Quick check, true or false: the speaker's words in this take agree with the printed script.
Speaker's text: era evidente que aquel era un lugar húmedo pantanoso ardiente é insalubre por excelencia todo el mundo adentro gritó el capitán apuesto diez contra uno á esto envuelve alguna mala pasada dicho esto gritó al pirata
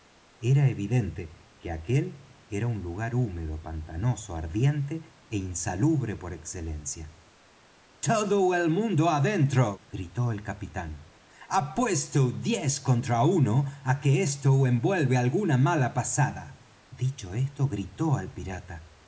false